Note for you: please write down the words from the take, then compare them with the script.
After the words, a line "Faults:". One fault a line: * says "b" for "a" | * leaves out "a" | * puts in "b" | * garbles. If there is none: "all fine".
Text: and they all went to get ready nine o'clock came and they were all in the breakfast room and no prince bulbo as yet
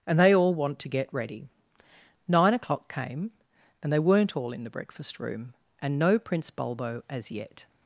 and they all want to get ready nine o'clock came and they weren't all in the breakfast room and no prince bulbo as yet
Faults:
* says "want" for "went"
* says "weren't" for "were"